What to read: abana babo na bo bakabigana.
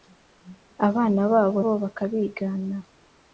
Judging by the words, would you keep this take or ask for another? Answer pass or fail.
fail